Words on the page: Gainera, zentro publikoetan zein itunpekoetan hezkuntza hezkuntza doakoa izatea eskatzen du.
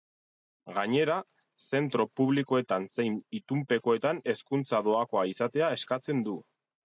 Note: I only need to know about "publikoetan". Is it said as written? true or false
true